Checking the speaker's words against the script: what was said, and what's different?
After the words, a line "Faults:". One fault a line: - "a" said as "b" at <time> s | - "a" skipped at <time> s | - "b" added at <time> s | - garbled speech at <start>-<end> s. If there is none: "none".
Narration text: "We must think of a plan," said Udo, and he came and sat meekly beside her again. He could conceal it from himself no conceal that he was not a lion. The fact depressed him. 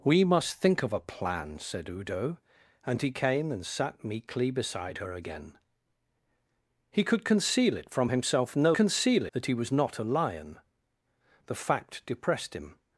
"We must think of a plan," said Udo, and he came and sat meekly beside her again. He could conceal it from himself no conceal that he was not a lion. The fact depressed him.
Faults:
none